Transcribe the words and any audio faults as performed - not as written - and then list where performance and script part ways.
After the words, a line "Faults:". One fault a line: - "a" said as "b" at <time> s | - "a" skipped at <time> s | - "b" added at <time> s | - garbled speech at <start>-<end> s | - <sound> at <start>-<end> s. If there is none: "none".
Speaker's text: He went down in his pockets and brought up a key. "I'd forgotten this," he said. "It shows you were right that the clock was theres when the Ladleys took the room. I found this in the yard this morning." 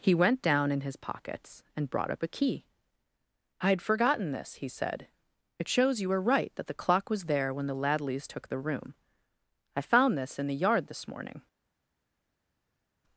He went down in his pockets and brought up a key. "I'd forgotten this," he said. "It shows you were right that the clock was there when the Ladleys took the room. I found this in the yard this morning."
Faults:
- "theres" said as "there" at 7.2 s